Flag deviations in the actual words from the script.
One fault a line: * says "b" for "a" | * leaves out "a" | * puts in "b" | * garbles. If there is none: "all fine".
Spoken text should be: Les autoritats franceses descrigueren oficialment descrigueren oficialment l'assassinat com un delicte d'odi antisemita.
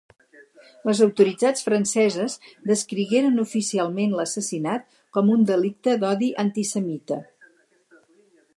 * leaves out "descrigueren oficialment"